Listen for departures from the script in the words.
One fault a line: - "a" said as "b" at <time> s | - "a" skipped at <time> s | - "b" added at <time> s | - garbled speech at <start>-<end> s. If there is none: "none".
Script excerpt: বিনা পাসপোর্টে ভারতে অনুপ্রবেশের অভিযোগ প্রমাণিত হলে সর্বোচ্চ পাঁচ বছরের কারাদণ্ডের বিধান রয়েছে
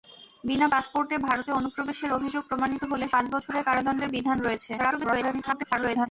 - "সর্বোচ্চ" skipped at 3.0 s
- garbled speech at 4.8-6.1 s